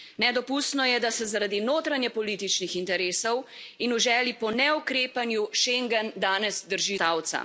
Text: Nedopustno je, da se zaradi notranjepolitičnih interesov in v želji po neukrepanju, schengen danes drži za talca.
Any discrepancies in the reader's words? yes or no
yes